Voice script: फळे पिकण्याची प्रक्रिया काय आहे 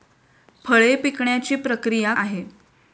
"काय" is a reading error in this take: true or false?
true